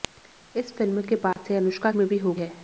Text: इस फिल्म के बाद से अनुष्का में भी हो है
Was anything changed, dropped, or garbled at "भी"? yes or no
no